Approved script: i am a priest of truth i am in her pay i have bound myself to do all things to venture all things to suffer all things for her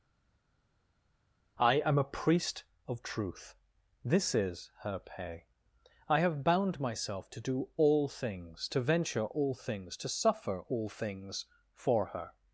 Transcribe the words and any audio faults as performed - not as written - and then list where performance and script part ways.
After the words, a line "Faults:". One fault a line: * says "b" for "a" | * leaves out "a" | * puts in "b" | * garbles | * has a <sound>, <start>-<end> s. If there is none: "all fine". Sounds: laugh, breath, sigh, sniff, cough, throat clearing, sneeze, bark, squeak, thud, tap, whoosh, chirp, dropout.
i am a priest of truth this is her pay i have bound myself to do all things to venture all things to suffer all things for her
Faults:
* says "this is" for "i am in"